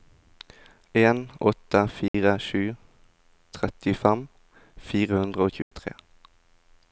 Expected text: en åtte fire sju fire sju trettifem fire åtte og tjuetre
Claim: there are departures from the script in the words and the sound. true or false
true